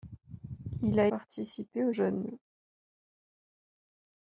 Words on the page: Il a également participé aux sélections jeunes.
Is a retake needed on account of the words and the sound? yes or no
yes